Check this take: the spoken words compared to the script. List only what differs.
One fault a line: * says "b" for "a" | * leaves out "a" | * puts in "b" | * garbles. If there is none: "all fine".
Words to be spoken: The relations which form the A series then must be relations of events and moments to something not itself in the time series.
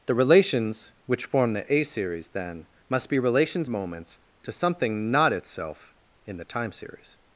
* leaves out "of events and"